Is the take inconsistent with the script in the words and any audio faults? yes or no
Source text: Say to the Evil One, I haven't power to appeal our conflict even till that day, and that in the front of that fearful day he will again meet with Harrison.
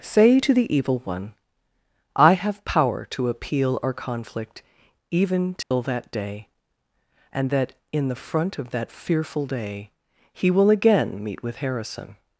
yes